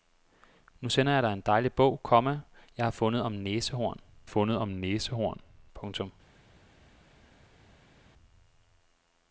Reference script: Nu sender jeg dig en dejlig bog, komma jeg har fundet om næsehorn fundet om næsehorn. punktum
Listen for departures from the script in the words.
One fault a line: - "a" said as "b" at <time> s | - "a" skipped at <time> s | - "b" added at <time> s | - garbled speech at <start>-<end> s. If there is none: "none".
none